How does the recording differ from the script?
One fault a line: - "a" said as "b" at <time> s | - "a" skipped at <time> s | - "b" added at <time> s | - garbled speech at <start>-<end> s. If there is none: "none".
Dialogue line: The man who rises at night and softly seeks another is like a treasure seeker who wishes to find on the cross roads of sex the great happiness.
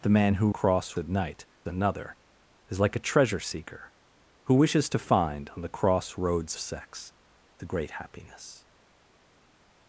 - "rises" said as "cross" at 0.5 s
- "and softly seeks" skipped at 1.5 s
- "of" skipped at 6.6 s